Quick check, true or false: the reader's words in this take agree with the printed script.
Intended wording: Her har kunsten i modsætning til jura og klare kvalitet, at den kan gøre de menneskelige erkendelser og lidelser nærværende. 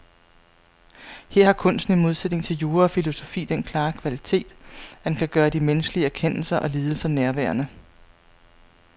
false